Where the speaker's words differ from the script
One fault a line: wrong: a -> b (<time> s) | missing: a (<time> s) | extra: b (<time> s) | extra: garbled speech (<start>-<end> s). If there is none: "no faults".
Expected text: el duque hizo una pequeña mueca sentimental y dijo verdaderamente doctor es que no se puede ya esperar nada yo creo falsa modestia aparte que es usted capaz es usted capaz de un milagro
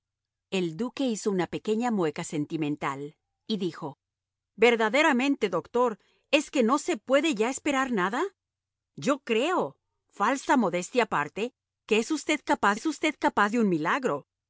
no faults